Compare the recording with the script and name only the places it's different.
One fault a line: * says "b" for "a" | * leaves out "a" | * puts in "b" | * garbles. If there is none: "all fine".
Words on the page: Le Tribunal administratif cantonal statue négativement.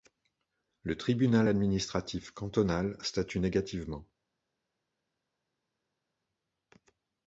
all fine